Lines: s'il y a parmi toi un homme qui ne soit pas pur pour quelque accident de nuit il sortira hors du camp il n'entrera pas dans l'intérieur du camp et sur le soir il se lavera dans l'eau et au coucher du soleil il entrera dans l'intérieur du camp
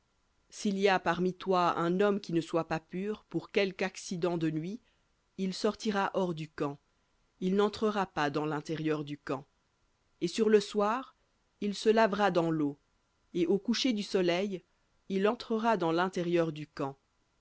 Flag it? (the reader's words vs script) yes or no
no